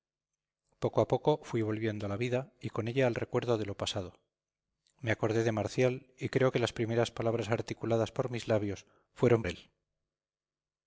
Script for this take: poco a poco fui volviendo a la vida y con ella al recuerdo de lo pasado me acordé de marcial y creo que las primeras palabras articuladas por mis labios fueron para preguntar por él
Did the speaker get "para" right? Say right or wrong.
wrong